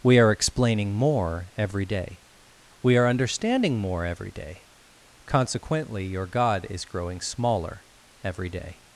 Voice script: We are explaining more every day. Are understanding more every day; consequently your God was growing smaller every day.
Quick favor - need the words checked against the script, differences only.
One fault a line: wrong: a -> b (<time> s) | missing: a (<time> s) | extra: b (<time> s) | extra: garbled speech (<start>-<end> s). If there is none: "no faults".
extra: We (2.8 s)
wrong: was -> is (6.7 s)